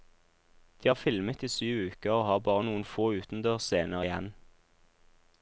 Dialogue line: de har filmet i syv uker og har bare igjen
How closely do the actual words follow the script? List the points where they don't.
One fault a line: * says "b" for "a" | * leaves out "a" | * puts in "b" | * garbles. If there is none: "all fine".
* puts in "noen få utendørsscener"